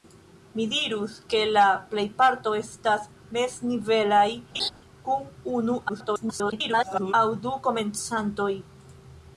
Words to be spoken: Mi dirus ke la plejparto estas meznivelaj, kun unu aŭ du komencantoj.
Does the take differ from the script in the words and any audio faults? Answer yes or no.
yes